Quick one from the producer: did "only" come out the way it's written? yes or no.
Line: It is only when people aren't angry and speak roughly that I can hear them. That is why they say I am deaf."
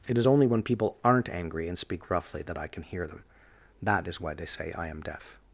yes